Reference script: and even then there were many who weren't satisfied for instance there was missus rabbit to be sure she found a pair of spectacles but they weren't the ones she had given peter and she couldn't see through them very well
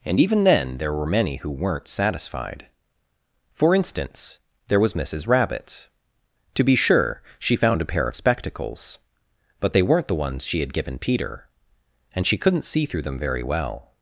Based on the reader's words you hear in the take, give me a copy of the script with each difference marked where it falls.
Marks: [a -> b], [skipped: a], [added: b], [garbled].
and even then there were many who weren't satisfied for instance there was missus rabbit to be sure she found a pair of spectacles but they weren't the ones she had given peter and she couldn't see through them very well